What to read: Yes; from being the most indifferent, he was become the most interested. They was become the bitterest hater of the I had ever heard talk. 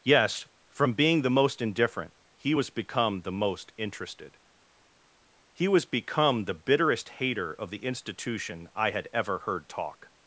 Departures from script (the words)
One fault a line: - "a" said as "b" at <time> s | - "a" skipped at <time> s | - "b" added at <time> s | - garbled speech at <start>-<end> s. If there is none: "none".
- "They" said as "He" at 5.5 s
- "institution" added at 7.8 s